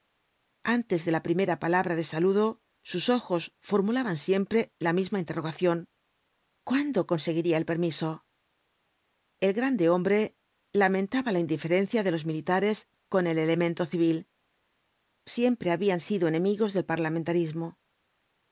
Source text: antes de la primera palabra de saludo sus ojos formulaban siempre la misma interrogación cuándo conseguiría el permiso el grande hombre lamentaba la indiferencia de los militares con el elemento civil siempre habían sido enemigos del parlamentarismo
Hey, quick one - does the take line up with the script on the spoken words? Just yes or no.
yes